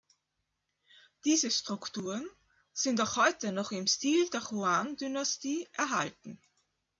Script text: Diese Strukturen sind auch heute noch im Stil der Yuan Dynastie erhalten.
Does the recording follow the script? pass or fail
pass